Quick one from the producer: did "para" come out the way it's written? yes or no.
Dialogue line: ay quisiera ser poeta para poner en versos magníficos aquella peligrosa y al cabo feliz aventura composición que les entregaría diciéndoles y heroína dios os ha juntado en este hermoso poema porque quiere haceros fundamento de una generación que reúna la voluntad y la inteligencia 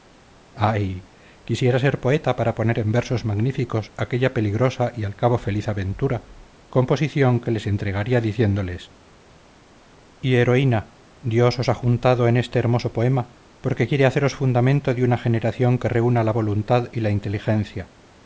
yes